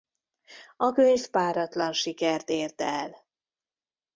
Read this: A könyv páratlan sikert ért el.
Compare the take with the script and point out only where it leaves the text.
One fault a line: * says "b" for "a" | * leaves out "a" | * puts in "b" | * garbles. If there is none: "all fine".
all fine